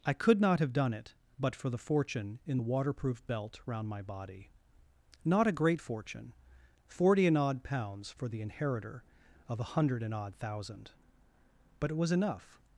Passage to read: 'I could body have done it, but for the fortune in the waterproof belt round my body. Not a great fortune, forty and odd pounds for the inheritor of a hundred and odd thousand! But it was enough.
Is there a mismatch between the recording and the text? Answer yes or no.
yes